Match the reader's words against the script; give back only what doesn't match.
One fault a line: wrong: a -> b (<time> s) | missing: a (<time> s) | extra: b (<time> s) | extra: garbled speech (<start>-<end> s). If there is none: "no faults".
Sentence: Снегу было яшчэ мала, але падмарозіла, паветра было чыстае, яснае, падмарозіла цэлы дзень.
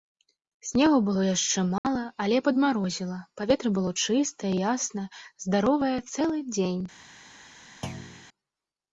wrong: падмарозіла -> здаровае (5.5 s)